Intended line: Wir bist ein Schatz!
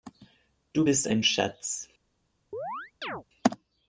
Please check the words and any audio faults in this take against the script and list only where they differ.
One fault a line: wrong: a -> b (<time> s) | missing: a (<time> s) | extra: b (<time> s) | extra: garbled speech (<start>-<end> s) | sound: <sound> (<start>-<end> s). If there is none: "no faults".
wrong: Wir -> Du (0.7 s)
sound: chirp (2.5-3.2 s)